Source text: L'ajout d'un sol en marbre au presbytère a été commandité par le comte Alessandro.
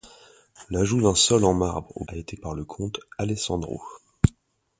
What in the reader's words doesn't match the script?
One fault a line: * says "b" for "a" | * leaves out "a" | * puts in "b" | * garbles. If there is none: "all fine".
* leaves out "presbytère"
* leaves out "commandité"